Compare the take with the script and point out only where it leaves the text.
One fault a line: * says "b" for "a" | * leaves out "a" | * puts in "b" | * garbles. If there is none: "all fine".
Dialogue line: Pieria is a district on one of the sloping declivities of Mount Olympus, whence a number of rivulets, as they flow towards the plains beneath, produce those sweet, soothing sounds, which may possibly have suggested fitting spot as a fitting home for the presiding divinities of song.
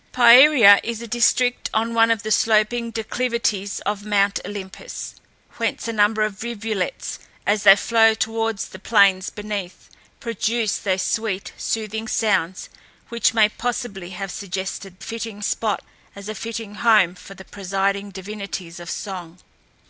all fine